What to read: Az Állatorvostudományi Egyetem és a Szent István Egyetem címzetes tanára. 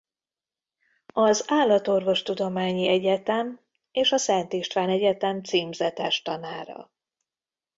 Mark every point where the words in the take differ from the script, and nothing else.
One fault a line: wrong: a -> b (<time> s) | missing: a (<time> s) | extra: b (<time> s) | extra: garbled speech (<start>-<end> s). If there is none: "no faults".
no faults